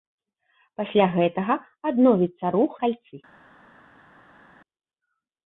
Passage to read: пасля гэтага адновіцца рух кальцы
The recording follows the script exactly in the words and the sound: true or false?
true